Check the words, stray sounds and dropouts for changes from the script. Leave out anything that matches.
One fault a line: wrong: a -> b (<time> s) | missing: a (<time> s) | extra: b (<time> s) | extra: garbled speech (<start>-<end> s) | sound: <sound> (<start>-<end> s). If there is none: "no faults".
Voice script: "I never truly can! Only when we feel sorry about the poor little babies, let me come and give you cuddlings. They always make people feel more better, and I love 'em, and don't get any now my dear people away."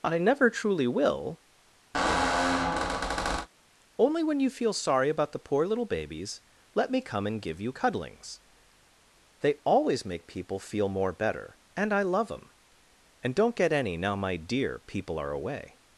wrong: can -> will (0.9 s)
sound: squeak (1.9-3.5 s)
wrong: we -> you (4.4 s)
extra: are (15.2 s)